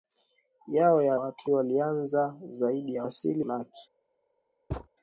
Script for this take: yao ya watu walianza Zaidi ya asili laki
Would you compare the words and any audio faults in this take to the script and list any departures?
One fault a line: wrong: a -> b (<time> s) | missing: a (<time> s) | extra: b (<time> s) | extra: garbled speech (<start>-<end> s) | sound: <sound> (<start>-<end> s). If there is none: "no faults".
sound: thud (4.7-4.9 s)